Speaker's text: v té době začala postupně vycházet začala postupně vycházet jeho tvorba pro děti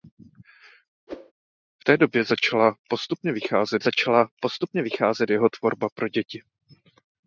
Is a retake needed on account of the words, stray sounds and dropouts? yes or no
yes